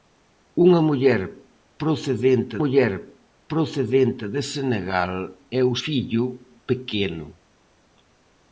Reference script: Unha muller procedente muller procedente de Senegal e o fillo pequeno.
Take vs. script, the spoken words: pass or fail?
pass